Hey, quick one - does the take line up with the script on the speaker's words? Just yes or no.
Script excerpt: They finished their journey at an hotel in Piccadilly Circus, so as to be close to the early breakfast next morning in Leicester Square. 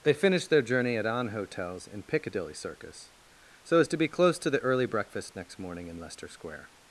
no